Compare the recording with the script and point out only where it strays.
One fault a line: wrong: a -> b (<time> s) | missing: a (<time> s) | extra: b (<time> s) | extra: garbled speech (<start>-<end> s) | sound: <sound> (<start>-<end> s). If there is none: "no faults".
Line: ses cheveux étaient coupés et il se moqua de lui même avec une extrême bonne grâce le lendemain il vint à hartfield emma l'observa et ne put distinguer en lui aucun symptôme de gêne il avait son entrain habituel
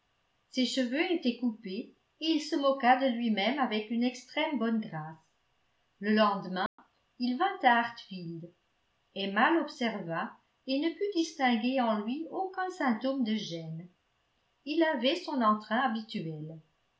sound: dropout (6.7-6.8 s)